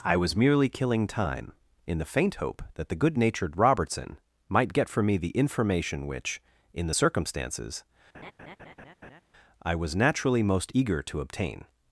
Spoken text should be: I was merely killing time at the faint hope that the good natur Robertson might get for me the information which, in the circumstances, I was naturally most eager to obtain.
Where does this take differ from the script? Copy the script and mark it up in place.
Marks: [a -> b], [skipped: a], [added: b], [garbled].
I was merely killing time [at -> in] the faint hope that the good [natur -> natured] Robertson might get for me the information which, in the circumstances, I was naturally most eager to obtain.